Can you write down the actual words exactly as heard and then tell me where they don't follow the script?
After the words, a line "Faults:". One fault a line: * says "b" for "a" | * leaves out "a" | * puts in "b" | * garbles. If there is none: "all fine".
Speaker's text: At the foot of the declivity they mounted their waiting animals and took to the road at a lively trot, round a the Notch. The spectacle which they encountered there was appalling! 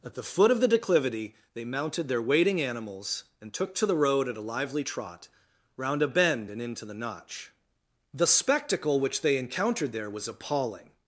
At the foot of the declivity they mounted their waiting animals and took to the road at a lively trot, round a bend and into the Notch. The spectacle which they encountered there was appalling!
Faults:
* puts in "bend and into"